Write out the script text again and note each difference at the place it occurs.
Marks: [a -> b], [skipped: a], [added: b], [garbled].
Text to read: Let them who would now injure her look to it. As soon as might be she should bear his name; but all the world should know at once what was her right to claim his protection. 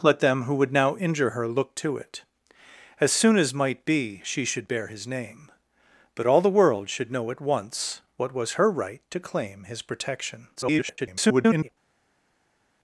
Let them who would now injure her look to it. As soon as might be she should bear his name; but all the world should know at once what was her right to claim his protection. [garbled]